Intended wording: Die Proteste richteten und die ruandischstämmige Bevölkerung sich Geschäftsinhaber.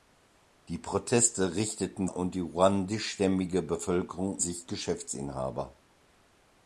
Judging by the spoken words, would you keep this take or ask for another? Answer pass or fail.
pass